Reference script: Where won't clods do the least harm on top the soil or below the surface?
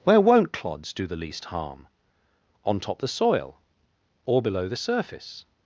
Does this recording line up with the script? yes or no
yes